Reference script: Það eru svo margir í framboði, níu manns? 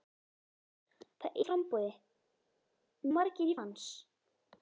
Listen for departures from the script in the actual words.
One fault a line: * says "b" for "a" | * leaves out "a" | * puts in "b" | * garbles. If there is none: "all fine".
* leaves out "eru svo margir"
* says "margir" for "níu"